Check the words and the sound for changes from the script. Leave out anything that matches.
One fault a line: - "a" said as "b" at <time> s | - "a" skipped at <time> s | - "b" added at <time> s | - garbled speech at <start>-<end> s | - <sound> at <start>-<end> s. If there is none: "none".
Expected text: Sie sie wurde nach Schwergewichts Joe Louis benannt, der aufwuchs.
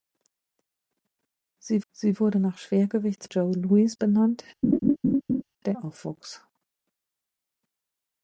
- laugh at 4.6-5.4 s